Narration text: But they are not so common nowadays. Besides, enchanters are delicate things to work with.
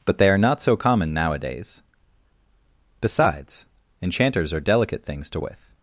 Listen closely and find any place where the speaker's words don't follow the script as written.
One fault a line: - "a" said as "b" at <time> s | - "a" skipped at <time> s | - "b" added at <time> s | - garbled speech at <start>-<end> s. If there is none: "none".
- "work" skipped at 5.4 s